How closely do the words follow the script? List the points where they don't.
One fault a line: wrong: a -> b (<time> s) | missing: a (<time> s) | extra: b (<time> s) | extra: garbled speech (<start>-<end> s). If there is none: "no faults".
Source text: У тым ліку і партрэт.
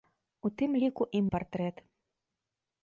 no faults